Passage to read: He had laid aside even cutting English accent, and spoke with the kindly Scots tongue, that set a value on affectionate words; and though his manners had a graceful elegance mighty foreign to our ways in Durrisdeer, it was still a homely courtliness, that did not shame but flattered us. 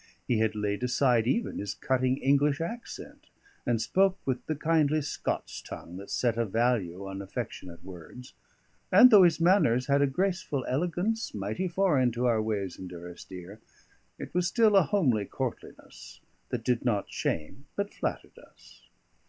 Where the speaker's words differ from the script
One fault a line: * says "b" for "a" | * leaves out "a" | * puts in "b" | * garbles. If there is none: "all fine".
* puts in "his"